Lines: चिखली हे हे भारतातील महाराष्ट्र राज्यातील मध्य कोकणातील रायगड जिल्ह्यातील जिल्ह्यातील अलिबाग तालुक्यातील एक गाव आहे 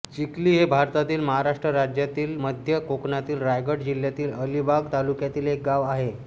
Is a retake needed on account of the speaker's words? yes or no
yes